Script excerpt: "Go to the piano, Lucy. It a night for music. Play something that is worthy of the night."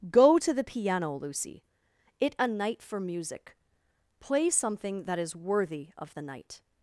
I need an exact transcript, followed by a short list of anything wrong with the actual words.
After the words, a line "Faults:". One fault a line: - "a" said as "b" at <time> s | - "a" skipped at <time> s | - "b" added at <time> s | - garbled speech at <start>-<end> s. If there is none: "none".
"Go to the piano, Lucy. It a night for music. Play something that is worthy of the night."
Faults:
none